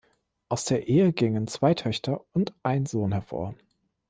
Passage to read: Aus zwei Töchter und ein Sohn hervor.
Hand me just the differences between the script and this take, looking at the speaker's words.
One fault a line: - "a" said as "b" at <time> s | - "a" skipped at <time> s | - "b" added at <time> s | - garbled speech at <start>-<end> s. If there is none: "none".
- "der Ehe gingen" added at 0.7 s